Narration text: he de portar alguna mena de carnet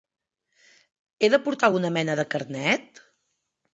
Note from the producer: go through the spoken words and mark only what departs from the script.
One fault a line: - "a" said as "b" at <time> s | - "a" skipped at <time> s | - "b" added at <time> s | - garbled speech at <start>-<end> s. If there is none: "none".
none